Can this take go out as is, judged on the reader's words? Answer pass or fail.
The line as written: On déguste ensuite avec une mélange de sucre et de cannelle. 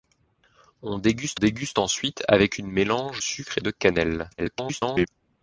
fail